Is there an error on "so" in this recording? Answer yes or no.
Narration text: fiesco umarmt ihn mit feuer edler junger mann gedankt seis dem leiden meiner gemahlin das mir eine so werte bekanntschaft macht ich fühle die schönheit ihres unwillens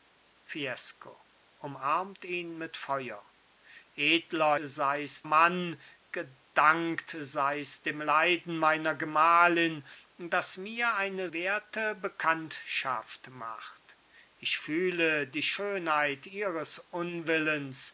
yes